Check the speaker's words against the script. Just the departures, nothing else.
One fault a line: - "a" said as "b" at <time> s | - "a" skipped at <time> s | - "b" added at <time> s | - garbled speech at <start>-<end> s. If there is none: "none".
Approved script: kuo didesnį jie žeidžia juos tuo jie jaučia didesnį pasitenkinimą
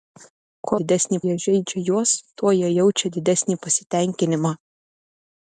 none